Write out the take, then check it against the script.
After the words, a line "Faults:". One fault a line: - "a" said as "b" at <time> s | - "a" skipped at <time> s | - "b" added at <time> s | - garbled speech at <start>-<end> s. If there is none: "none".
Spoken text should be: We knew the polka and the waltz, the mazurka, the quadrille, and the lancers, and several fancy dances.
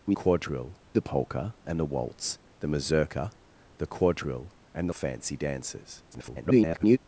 We quadrille the polka and the waltz, the mazurka, the quadrille, and the fancy dances. [garbled]
Faults:
- "knew" said as "quadrille" at 0.1 s
- "lancers and several" skipped at 4.9 s
- garbled speech at 6.1-7.0 s